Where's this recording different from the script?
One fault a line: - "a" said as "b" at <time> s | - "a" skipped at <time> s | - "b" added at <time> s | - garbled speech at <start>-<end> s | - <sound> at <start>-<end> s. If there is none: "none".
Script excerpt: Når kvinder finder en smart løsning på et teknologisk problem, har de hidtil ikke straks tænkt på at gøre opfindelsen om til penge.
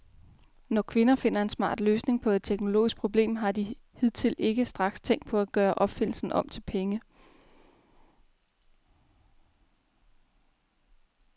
none